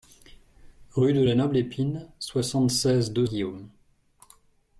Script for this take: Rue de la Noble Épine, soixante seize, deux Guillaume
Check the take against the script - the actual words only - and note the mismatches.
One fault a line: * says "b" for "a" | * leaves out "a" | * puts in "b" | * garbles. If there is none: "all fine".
all fine